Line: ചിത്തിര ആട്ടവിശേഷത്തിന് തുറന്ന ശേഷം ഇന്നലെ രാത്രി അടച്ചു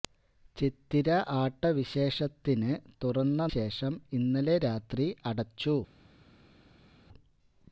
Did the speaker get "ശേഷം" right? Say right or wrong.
right